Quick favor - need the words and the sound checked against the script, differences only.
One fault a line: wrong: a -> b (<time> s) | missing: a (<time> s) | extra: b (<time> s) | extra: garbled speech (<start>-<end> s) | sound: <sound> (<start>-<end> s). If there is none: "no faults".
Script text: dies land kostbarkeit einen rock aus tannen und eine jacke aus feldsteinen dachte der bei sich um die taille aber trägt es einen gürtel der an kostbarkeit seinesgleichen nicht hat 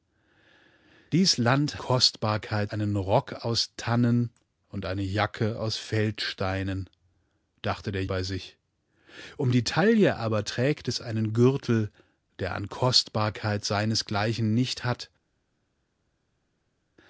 no faults